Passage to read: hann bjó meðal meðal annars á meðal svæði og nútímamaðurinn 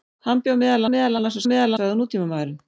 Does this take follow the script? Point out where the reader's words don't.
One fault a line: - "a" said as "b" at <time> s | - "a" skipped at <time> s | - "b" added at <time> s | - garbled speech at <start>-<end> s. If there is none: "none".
none